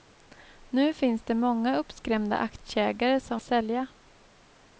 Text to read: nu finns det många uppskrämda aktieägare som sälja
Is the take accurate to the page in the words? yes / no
yes